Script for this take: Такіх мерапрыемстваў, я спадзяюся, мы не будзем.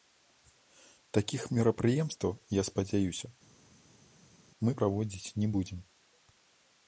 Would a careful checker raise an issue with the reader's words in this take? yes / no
yes